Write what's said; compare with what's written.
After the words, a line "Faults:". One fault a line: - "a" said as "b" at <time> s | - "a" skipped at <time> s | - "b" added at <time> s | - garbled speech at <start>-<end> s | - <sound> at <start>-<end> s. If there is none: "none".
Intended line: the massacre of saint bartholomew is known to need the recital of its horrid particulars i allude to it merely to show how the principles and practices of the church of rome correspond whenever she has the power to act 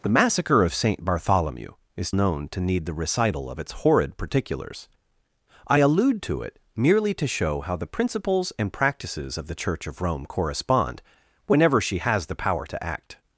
the massacre of saint bartholomew is known to need the recital of its horrid particulars i allude to it merely to show how the principles and practices of the church of rome correspond whenever she has the power to act
Faults:
none